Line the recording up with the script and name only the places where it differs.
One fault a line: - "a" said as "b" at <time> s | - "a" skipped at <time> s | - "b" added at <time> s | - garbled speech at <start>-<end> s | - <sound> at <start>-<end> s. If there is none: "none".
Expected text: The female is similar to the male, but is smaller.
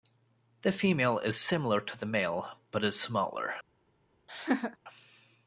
- laugh at 4.3-4.8 s